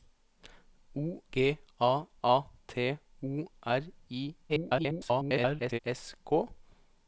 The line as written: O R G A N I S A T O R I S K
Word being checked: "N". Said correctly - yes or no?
no